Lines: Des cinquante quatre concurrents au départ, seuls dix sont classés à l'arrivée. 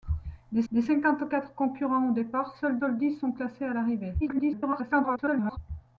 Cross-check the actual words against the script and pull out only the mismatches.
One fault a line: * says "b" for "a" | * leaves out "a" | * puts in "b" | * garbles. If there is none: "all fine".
* puts in "des"
* puts in "seuls"
* garbles